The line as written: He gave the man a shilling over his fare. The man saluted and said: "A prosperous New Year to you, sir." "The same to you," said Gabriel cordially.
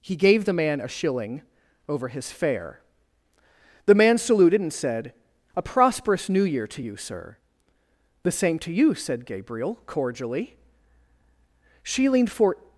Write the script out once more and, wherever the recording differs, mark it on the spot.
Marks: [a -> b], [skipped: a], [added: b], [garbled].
He gave the man a shilling over his fare. The man saluted and said: "A prosperous New Year to you, sir." "The same to you," said Gabriel cordially. [added: She leaned for]